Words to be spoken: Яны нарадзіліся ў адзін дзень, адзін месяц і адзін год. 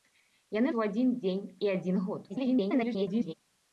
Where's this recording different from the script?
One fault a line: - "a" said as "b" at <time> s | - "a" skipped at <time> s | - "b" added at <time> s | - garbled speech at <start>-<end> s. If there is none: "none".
- "нарадзіліся" skipped at 0.7 s
- "адзін месяц" skipped at 1.4 s
- garbled speech at 2.3-3.3 s